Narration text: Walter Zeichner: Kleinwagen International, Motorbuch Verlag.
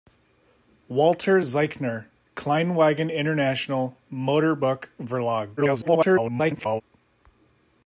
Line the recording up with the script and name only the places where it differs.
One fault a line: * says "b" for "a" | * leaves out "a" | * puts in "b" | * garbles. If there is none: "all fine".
* garbles